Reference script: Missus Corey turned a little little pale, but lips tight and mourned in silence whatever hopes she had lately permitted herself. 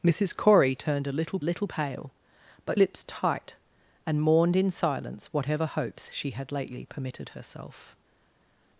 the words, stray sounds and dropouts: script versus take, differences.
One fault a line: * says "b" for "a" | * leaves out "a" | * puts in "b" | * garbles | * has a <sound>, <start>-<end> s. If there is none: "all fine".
all fine